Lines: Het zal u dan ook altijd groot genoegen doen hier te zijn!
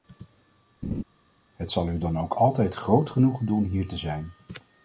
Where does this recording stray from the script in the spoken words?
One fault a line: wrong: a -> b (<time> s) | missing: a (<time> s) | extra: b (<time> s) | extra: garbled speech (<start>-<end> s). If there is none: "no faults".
no faults